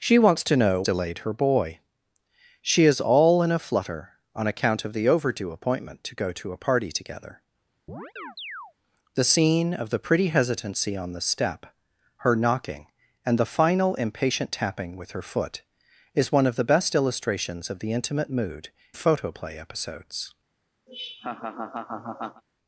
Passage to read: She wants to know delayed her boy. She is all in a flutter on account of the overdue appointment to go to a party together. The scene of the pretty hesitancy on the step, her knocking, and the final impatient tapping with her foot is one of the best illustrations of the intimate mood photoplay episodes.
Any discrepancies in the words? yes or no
no